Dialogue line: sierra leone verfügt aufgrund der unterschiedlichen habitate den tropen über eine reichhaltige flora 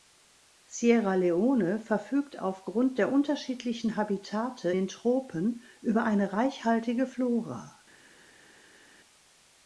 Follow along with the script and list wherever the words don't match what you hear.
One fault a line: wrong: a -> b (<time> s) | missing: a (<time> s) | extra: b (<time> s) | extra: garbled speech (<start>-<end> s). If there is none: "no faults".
no faults